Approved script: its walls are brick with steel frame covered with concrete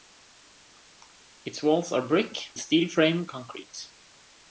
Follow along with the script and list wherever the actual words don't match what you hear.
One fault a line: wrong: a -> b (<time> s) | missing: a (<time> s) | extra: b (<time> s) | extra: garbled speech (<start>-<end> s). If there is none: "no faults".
missing: with (2.5 s)
missing: covered with (3.3 s)